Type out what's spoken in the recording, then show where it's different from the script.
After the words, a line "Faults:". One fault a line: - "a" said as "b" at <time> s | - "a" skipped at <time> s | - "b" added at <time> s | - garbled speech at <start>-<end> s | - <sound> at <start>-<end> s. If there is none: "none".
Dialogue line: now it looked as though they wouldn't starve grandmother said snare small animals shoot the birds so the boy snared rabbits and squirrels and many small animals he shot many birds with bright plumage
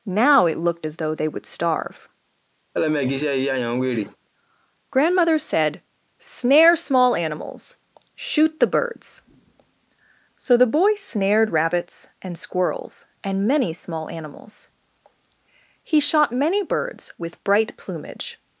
now it looked as though they would starve grandmother said snare small animals shoot the birds so the boy snared rabbits and squirrels and many small animals he shot many birds with bright plumage
Faults:
- "wouldn't" said as "would" at 1.3 s
- laugh at 2.7-4.2 s